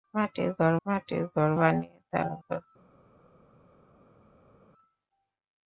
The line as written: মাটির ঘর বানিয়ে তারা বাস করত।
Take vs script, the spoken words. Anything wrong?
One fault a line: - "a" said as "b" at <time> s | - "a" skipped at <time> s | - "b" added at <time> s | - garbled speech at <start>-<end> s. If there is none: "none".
- "মাটির ঘর" added at 0.8 s
- "বাস" skipped at 2.3 s